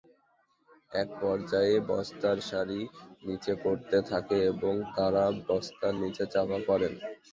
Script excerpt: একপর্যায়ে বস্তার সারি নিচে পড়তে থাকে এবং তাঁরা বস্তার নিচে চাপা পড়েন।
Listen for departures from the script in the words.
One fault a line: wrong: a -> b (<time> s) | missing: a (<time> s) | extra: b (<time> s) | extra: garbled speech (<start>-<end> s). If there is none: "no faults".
no faults